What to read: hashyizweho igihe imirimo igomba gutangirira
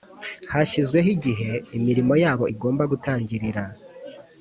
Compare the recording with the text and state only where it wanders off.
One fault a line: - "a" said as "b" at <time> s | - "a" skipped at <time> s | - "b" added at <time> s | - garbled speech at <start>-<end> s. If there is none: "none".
- "yabo" added at 2.2 s